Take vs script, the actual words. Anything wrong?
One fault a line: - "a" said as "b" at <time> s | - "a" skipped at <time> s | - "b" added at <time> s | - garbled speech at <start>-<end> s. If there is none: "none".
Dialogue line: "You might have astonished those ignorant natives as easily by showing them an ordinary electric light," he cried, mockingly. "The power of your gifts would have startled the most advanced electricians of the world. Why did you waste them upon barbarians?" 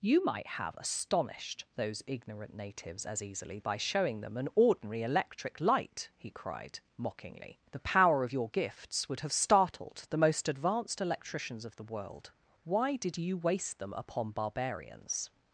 none